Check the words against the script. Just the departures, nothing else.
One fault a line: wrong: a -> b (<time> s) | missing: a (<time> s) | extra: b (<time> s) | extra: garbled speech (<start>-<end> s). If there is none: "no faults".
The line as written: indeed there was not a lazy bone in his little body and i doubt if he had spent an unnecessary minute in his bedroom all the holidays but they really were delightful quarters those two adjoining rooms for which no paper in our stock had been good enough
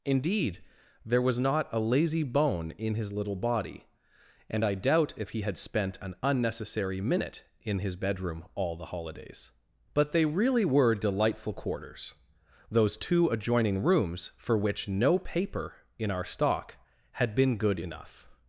no faults